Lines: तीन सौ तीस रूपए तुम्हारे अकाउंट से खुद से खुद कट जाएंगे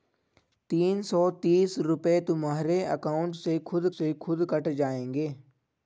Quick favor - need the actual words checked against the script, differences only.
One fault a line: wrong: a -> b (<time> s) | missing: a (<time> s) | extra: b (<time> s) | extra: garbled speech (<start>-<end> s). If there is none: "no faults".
no faults